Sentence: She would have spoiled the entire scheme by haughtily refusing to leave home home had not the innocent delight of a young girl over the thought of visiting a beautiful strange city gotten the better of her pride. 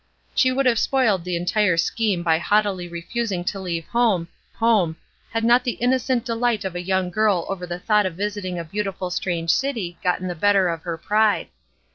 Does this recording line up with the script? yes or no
yes